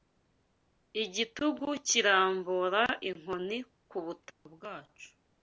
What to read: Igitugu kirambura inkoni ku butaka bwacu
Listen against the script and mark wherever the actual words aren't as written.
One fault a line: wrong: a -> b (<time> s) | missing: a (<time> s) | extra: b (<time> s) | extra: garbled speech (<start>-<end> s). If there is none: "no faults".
no faults